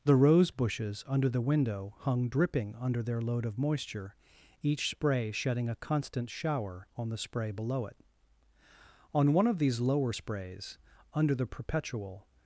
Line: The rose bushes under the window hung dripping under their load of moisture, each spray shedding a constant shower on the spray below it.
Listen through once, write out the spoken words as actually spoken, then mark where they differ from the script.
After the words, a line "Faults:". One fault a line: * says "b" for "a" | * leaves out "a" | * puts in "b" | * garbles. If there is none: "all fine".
The rose bushes under the window hung dripping under their load of moisture, each spray shedding a constant shower on the spray below it. On one of these lower sprays, under the perpetual
Faults:
* puts in "On one of these lower sprays under the perpetual"